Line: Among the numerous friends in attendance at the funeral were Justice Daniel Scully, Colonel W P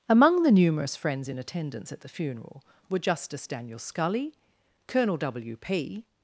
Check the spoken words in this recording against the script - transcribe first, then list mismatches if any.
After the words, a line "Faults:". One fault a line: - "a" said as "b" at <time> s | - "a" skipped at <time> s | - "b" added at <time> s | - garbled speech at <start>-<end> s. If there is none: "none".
Among the numerous friends in attendance at the funeral were Justice Daniel Scully, Colonel W P
Faults:
none